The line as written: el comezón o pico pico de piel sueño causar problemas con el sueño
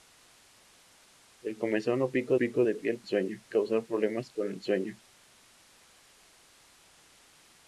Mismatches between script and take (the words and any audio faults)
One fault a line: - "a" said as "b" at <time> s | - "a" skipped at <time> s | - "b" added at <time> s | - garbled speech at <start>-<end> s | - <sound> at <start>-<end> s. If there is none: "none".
none